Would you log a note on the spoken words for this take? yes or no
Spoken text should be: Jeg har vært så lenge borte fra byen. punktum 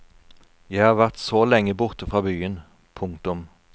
no